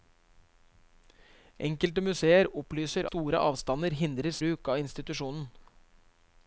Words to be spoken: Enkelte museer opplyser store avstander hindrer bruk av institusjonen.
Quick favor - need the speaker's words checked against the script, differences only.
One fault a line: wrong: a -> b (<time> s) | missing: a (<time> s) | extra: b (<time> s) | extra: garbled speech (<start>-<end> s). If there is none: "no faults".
no faults